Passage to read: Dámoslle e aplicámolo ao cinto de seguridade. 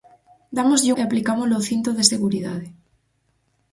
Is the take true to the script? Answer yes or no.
yes